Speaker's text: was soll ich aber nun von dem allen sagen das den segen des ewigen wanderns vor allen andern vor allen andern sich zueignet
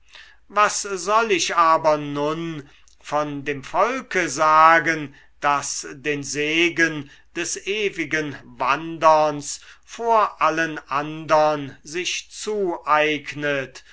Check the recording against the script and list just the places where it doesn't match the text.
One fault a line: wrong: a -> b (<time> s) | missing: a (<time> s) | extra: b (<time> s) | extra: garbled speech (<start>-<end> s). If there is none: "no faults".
wrong: allen -> volke (3.6 s)
missing: vor allen andern (11.8 s)